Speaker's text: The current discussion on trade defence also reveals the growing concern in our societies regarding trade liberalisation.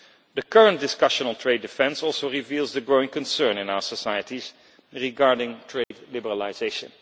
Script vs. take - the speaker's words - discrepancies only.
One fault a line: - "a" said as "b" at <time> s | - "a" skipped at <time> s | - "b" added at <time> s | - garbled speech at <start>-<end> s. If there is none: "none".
none